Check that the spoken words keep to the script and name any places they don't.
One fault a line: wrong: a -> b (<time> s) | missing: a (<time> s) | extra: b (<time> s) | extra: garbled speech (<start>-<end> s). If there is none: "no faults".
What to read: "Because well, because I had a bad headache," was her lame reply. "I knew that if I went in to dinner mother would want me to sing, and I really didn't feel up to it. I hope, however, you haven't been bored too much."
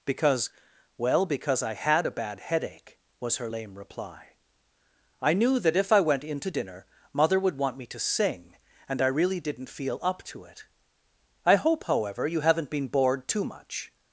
no faults